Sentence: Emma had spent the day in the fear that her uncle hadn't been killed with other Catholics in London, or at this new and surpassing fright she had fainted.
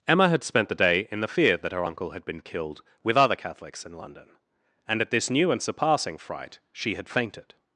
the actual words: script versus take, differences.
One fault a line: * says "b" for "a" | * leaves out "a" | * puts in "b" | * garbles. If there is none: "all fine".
* says "had" for "hadn't"
* says "and" for "or"